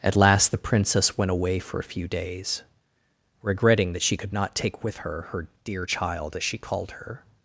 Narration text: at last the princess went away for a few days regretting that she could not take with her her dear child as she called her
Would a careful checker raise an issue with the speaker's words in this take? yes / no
no